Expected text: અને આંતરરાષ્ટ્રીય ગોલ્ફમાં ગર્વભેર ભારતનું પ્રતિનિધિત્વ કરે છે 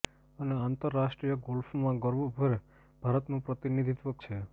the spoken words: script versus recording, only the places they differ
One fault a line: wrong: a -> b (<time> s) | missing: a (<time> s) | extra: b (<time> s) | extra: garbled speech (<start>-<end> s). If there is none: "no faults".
missing: કરે (4.2 s)